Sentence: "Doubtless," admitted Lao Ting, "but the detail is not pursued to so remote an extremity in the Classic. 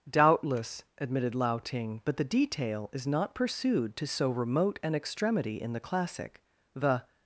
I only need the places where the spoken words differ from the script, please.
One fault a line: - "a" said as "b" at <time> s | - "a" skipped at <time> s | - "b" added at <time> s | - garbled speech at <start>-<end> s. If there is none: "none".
- "The" added at 6.7 s